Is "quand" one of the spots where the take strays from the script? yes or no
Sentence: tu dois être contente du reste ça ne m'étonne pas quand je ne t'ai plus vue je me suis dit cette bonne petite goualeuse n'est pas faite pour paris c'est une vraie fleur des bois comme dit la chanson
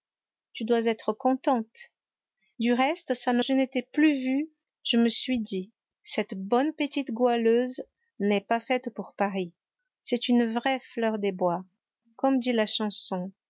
yes